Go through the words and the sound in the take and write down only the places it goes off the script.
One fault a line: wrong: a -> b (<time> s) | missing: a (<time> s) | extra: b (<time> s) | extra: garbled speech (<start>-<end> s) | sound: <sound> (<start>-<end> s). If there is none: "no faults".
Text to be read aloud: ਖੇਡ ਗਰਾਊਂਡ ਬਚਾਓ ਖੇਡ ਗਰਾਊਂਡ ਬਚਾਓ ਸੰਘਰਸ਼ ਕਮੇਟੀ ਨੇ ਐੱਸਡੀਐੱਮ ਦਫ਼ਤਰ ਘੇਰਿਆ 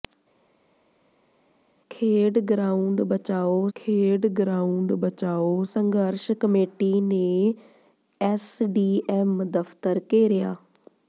no faults